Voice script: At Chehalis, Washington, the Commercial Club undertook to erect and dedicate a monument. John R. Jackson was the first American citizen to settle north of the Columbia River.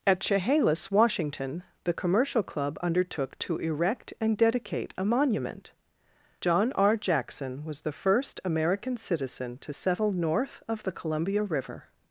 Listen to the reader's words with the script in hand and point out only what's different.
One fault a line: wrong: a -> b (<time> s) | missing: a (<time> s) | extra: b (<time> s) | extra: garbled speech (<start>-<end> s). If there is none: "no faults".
no faults